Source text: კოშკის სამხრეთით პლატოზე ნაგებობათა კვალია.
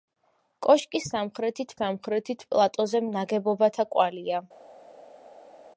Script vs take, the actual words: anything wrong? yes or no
yes